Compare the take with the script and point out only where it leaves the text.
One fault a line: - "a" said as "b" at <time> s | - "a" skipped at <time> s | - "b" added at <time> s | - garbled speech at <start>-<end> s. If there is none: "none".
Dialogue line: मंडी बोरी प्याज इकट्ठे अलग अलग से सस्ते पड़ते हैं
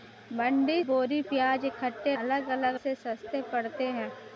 none